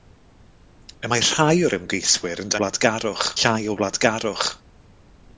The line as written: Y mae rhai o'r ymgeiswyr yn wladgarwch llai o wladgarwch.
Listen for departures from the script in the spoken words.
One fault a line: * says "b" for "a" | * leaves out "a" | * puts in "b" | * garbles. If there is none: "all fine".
all fine